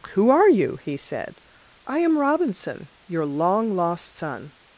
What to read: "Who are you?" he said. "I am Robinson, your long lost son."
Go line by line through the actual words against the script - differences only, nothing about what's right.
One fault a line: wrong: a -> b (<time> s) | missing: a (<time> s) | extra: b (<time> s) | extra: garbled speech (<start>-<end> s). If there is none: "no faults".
no faults